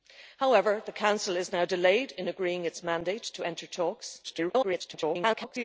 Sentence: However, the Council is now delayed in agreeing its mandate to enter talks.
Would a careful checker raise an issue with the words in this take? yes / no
yes